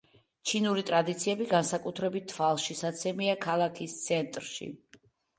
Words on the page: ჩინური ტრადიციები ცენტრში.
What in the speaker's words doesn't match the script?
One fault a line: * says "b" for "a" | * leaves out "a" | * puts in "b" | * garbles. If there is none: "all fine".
* puts in "განსაკუთრებით თვალშისაცემია ქალაქის"